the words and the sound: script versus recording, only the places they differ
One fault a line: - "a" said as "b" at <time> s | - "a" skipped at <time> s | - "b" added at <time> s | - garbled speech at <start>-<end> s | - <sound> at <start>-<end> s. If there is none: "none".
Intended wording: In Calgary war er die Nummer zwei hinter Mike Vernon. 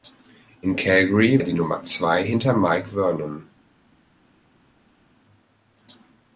- "war" skipped at 1.4 s